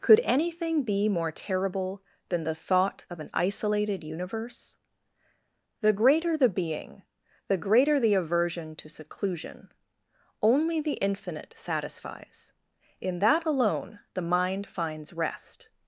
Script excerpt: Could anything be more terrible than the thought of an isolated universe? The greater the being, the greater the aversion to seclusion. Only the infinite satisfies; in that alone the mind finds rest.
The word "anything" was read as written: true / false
true